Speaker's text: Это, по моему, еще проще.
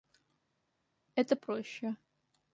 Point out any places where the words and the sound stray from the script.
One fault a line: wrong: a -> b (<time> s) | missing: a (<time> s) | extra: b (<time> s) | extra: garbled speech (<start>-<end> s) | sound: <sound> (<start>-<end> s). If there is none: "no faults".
missing: по моему еще (1.4 s)